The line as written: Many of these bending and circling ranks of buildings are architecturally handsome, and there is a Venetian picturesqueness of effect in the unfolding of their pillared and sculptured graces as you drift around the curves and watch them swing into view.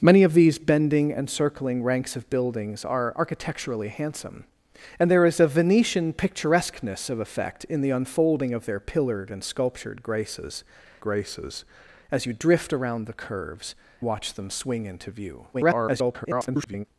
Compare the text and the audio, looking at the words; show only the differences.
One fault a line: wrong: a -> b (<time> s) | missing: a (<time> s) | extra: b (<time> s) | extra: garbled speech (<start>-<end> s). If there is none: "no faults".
extra: graces (11.0 s)
missing: and (13.8 s)
extra: garbled speech (15.5-16.9 s)